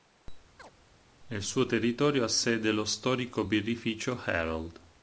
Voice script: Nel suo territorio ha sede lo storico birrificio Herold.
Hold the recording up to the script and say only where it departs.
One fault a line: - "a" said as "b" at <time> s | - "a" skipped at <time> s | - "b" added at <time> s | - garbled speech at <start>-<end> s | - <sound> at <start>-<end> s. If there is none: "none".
- chirp at 0.6-0.7 s